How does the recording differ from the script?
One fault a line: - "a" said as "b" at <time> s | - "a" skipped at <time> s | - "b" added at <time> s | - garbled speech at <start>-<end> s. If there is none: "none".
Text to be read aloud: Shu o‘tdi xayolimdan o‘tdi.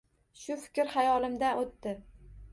- "o‘tdi" said as "fikr" at 0.6 s